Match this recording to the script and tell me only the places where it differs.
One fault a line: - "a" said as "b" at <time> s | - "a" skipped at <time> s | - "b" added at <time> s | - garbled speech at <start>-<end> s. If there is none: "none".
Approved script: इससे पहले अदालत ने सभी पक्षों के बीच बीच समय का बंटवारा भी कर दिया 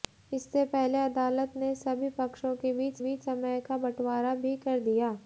none